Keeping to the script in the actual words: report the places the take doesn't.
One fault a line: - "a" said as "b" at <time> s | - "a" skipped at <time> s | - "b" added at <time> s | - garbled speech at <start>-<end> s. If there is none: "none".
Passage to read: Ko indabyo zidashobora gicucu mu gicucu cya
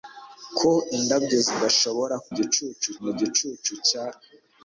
none